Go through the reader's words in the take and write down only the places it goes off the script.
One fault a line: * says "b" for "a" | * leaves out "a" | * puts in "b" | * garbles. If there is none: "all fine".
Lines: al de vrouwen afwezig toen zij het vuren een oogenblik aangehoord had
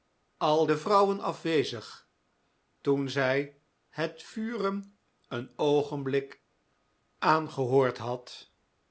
all fine